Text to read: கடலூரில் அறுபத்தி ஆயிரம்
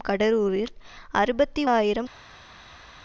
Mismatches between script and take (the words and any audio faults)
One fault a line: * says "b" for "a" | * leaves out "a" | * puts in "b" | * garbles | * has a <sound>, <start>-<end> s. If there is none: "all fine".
all fine